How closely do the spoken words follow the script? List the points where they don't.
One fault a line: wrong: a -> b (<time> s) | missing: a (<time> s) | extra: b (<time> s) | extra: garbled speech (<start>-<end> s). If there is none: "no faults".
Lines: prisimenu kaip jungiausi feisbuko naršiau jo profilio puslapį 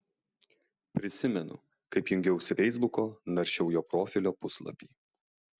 no faults